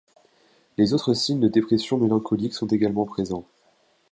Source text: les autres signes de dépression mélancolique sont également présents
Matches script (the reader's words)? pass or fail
pass